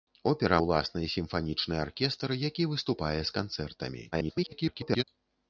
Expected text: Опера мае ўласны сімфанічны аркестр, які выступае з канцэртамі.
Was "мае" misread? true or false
true